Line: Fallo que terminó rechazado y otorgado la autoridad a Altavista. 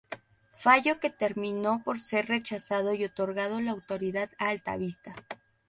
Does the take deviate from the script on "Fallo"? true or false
false